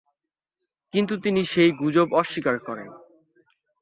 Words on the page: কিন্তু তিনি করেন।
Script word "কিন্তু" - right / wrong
right